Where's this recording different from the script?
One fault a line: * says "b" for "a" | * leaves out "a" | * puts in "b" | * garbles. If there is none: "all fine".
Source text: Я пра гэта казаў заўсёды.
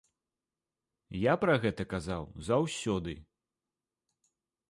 all fine